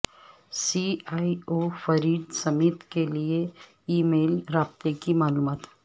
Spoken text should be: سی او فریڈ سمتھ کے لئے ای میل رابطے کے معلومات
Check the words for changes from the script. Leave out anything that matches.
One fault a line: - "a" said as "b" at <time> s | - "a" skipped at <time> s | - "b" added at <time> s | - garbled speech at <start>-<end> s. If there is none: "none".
- "ای" added at 1.1 s
- "کے" said as "کی" at 5.0 s